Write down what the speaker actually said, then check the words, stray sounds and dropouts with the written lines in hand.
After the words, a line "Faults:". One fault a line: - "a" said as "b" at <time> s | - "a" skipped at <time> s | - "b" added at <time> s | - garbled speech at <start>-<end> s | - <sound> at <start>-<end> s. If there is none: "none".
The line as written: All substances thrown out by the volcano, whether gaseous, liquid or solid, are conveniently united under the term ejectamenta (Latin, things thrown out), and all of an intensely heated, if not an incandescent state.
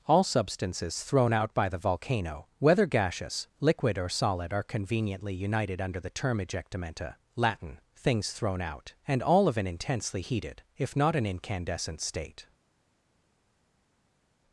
All substances thrown out by the volcano, whether gaseous, liquid or solid, are conveniently united under the term ejectamenta (Latin, things thrown out), and all of an intensely heated, if not an incandescent state.
Faults:
none